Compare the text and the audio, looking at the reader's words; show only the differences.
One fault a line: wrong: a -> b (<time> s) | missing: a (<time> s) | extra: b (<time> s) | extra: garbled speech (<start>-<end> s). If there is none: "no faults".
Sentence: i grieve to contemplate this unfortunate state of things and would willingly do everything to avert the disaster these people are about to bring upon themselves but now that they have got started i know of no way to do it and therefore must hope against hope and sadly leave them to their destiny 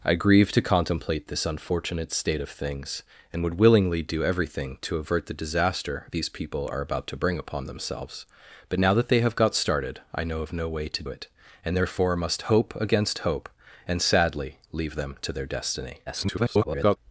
missing: do (11.0 s)
extra: garbled speech (16.1-17.0 s)